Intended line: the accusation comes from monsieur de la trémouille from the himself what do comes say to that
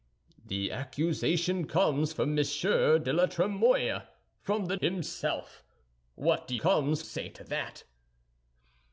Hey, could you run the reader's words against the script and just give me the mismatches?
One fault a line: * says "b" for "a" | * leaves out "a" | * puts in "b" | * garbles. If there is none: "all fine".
all fine